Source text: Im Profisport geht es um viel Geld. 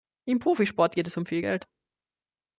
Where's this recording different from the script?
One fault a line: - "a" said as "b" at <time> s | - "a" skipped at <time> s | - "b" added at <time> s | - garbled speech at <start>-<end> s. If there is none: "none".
none